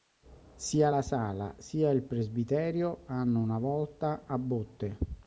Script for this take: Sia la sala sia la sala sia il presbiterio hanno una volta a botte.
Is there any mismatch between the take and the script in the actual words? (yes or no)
yes